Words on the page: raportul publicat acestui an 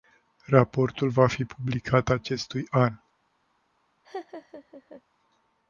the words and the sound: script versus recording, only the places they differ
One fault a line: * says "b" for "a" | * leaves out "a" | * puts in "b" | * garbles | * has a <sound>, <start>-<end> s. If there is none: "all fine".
* puts in "va fi"
* has a laugh, 4.0-5.0 s